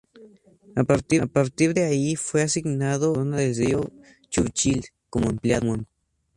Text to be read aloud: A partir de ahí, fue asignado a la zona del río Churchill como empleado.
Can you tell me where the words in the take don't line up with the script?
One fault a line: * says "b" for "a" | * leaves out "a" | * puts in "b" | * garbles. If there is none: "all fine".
all fine